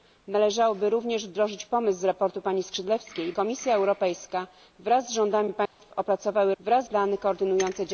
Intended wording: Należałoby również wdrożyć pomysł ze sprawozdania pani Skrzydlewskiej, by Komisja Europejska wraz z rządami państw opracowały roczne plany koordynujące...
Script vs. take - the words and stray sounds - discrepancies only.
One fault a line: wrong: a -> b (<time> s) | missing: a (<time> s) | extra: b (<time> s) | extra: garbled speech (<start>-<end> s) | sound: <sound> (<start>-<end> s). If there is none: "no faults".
missing: by (3.3 s)
sound: dropout (5.7-5.8 s)
wrong: roczne -> wraz (6.6 s)